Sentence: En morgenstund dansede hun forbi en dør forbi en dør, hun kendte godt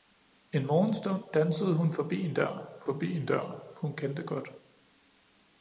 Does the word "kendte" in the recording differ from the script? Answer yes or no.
no